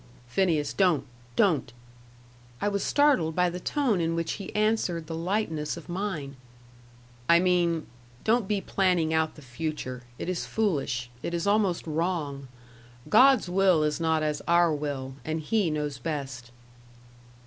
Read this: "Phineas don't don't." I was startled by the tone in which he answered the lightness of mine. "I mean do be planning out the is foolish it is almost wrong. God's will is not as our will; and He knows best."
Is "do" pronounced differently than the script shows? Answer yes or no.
yes